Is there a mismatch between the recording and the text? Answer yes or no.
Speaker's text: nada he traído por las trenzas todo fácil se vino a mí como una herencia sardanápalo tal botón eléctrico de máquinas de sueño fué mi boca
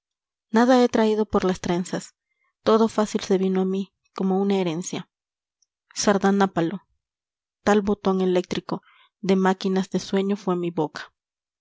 no